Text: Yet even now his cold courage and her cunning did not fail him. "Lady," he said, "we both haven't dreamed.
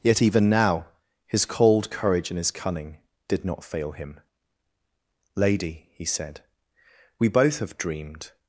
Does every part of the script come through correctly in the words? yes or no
no